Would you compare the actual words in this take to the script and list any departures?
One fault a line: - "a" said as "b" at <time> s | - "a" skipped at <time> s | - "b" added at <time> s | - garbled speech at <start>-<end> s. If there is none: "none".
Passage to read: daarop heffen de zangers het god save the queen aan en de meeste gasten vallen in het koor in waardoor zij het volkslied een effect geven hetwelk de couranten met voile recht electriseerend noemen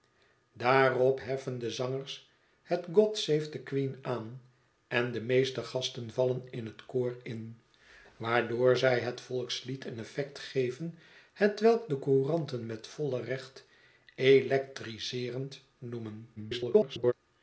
- garbled speech at 16.4-17.1 s